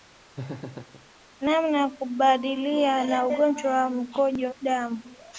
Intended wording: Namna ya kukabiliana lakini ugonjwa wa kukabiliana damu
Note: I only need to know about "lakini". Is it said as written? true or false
false